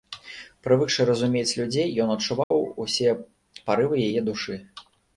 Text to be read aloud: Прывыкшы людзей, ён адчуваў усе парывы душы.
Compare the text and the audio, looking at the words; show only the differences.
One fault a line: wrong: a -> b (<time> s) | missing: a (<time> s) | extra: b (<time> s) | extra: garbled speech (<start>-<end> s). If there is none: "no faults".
extra: разумець (1.1 s)
extra: яе (4.1 s)